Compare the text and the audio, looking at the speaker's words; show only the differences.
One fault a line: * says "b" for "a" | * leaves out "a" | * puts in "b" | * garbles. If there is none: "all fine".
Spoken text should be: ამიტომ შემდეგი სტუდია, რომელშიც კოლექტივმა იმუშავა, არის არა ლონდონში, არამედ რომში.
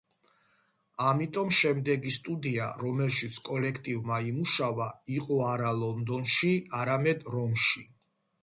* says "იყო" for "არის"